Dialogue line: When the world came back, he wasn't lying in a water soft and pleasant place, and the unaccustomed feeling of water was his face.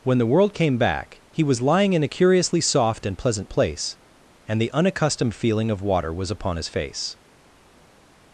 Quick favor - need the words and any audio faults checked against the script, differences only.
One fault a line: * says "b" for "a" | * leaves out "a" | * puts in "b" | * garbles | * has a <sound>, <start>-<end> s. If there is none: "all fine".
* says "was" for "wasn't"
* says "curiously" for "water"
* puts in "upon"